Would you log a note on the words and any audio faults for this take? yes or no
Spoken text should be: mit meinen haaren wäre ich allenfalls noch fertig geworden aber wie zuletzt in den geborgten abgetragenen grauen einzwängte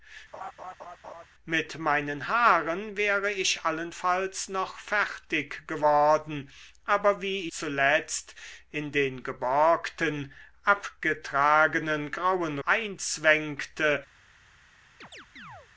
yes